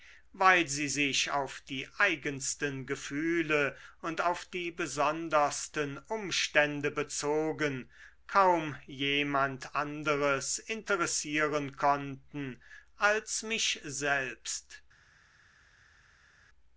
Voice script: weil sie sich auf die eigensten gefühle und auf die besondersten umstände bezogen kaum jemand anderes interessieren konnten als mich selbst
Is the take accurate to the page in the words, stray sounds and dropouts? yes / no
yes